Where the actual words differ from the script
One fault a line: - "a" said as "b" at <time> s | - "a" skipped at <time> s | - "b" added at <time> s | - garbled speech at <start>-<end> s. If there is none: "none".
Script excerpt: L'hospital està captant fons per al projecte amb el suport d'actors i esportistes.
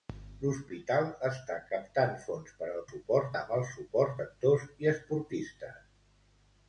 - "projecte" said as "suport" at 2.9 s